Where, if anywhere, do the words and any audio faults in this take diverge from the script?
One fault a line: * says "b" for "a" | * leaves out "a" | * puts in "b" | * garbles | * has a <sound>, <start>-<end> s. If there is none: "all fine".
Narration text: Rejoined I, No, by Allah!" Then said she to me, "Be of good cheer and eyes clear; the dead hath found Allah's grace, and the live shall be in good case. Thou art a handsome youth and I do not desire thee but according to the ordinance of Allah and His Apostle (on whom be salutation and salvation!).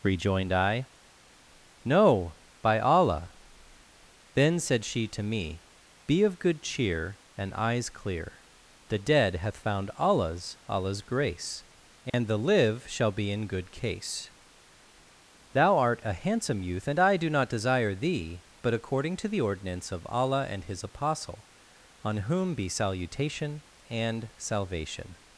* puts in "Allah's"
* has a dropout, 12.1-12.1 s